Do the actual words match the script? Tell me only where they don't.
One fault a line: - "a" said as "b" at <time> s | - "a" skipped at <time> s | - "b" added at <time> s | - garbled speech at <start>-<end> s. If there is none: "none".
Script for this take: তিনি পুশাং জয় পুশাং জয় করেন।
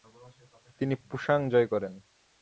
- "পুশাং জয়" skipped at 1.7 s